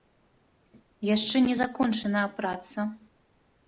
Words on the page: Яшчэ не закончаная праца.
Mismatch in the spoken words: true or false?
false